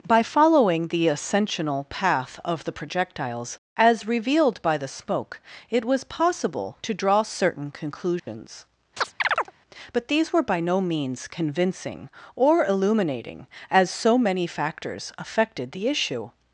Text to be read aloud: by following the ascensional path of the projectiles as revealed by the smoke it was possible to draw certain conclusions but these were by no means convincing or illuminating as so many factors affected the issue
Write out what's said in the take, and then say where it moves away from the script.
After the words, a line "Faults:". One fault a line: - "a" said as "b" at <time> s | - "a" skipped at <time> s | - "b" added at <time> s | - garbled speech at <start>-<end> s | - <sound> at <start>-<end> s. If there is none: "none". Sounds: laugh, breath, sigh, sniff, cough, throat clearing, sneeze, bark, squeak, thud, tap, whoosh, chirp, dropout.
by following the ascensional path of the projectiles as revealed by the smoke it was possible to draw certain conclusions but these were by no means convincing or illuminating as so many factors affected the issue
Faults:
- dropout at 8.2-8.3 s
- chirp at 9.0-9.5 s